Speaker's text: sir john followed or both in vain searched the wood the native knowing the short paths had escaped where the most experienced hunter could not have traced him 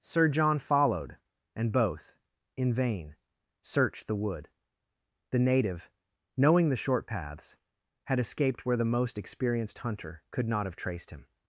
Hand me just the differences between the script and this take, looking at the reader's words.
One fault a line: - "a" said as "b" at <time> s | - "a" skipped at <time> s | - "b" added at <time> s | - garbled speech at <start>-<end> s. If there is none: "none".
- "or" said as "and" at 1.6 s